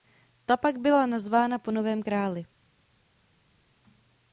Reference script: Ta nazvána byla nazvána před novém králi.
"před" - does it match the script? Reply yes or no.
no